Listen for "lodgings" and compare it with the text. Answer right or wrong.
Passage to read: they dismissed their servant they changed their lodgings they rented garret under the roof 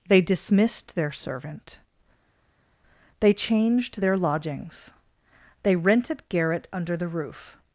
right